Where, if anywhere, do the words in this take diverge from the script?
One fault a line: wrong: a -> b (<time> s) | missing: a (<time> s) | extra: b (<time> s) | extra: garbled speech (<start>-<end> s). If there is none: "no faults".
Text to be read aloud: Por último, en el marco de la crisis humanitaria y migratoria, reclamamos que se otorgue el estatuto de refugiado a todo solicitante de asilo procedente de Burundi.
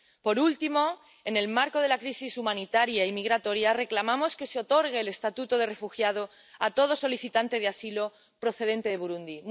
no faults